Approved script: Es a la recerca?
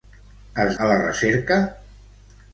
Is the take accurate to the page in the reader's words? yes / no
yes